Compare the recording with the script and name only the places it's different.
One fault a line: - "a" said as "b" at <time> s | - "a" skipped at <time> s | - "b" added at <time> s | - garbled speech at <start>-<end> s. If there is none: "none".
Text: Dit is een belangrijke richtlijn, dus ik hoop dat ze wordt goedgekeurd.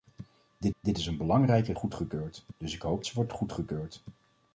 - "dit" added at 0.8 s
- "richtlijn" said as "goedgekeurd" at 1.7 s
- "dat" skipped at 3.0 s